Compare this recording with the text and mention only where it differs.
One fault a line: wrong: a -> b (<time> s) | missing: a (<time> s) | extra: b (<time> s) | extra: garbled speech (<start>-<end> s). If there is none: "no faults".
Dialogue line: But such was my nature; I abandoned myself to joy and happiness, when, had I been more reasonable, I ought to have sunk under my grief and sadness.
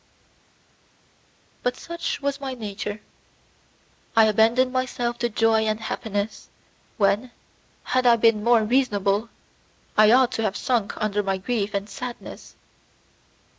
no faults